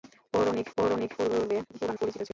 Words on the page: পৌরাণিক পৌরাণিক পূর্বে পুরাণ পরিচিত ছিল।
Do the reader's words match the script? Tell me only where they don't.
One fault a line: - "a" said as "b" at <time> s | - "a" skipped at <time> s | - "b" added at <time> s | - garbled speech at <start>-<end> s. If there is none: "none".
none